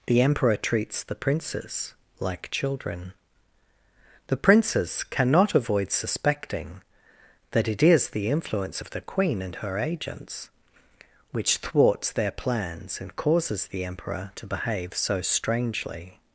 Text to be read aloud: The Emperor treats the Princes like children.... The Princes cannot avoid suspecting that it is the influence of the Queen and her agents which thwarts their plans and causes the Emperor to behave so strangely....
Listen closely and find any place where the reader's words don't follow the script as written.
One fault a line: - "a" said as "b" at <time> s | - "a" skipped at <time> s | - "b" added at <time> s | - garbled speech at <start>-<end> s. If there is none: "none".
none